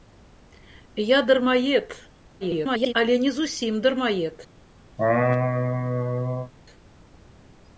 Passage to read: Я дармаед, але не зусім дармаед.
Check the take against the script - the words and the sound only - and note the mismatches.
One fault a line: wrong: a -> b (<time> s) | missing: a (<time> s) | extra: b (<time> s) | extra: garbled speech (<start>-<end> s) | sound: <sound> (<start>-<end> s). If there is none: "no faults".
extra: garbled speech (2.4-2.9 s)
sound: laugh (5.0-6.5 s)